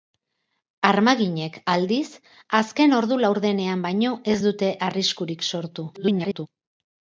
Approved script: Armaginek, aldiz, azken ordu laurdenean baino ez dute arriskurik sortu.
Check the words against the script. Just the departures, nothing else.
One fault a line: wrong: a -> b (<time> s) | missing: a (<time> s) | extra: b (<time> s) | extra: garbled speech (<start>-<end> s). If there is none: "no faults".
extra: garbled speech (5.9-6.5 s)